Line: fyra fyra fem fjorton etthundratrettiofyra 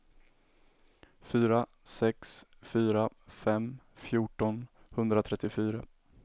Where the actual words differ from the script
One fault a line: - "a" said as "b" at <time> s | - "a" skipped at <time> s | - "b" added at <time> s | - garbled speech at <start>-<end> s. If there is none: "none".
- "sex" added at 1.8 s